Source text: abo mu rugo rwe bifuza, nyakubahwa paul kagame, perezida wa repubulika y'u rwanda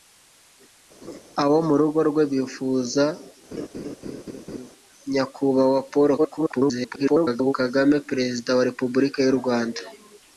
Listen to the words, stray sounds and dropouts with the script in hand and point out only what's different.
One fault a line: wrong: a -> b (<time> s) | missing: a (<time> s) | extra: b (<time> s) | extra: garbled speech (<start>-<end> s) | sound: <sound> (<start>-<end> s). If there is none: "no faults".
sound: laugh (1.0-1.2 s)
sound: laugh (3.5-4.7 s)
extra: garbled speech (6.2-7.5 s)